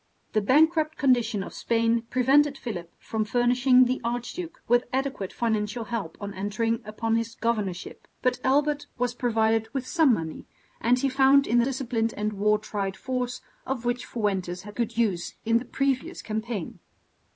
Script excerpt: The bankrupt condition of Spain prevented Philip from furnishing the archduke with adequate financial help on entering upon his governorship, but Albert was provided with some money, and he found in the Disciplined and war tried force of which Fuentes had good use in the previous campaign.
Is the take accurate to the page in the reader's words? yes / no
yes